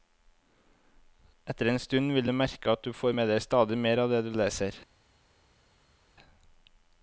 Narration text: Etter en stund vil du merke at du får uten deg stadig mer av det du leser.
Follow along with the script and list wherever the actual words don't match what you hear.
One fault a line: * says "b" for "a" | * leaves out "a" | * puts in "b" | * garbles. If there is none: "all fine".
* says "med" for "uten"